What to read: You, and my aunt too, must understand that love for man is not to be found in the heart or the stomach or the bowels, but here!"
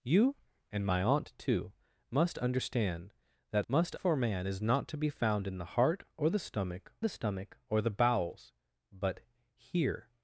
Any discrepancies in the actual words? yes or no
yes